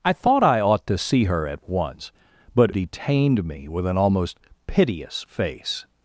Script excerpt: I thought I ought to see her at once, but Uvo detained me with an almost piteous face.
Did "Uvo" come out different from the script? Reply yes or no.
yes